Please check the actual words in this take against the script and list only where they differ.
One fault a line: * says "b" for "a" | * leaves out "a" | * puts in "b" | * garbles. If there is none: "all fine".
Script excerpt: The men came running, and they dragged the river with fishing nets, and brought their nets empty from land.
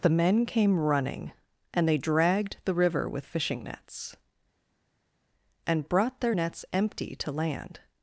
* says "to" for "from"